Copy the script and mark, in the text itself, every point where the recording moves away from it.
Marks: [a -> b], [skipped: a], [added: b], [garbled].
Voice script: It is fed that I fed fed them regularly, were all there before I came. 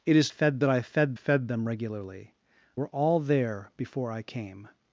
It is fed that I fed fed them regularly, were all there before I came.